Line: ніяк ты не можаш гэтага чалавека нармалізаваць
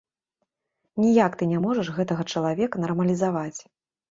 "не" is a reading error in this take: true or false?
false